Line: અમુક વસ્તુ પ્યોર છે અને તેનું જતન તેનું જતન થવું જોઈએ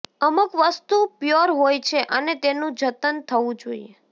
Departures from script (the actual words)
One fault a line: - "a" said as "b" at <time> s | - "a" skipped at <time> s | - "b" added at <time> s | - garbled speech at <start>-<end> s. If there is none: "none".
- "હોય" added at 1.5 s
- "તેનું જતન" skipped at 3.2 s